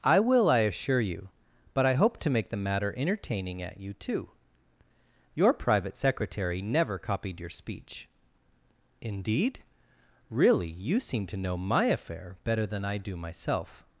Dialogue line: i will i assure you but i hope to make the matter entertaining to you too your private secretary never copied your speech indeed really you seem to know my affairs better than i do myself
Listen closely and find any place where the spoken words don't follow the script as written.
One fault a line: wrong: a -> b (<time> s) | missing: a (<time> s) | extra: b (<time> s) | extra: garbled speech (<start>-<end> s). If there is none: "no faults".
wrong: to -> at (3.6 s)
wrong: affairs -> affair (11.8 s)